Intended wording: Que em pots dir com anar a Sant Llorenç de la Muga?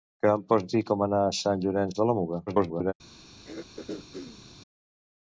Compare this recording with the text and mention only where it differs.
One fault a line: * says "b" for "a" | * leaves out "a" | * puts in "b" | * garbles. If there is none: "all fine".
* garbles